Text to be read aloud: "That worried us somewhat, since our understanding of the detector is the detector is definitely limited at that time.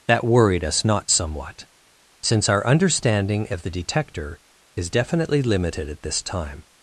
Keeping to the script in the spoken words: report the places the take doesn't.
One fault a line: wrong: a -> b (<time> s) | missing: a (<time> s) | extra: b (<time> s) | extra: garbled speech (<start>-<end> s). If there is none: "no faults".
extra: not (0.8 s)
missing: the detector is (4.9 s)
wrong: that -> this (6.0 s)